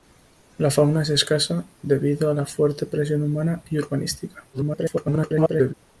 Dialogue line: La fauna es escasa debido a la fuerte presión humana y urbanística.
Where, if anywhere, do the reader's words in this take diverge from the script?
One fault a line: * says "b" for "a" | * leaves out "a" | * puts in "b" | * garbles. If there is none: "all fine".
* garbles